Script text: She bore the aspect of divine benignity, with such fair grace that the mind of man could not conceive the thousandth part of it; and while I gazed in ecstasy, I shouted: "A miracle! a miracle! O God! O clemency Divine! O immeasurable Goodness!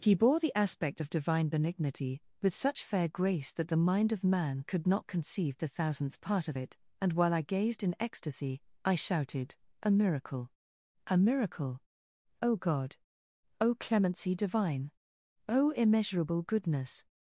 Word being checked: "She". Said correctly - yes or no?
no